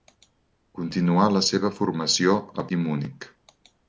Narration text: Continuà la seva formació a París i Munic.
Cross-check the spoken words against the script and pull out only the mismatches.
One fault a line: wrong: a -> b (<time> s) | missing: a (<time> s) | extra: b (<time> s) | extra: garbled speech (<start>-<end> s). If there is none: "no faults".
missing: París (2.7 s)